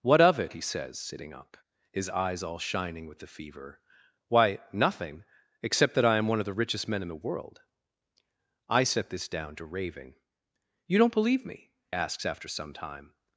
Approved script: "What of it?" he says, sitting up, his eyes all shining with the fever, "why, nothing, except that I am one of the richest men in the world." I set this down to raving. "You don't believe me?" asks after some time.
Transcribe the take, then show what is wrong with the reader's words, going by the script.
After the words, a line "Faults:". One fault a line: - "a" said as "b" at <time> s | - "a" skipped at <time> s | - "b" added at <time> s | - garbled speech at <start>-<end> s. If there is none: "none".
"What of it?" he says, sitting up, his eyes all shining with the fever, "why, nothing, except that I am one of the richest men in the world." I set this down to raving. "You don't believe me?" asks after some time.
Faults:
none